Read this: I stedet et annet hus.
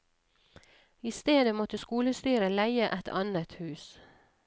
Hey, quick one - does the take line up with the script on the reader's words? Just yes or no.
no